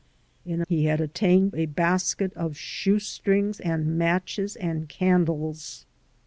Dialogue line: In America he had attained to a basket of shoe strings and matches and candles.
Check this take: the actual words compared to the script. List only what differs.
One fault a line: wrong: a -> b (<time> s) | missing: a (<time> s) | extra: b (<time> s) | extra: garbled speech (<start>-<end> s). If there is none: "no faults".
missing: America (0.6 s)
missing: to (1.5 s)